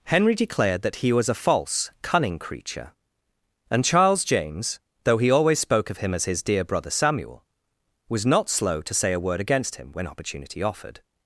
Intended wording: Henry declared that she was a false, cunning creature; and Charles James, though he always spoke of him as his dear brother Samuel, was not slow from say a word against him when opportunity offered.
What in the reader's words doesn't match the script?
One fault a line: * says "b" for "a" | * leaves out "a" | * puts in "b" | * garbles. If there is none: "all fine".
* says "he" for "she"
* says "to" for "from"